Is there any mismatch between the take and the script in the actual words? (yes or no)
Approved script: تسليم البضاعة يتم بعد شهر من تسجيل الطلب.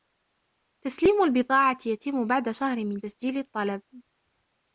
no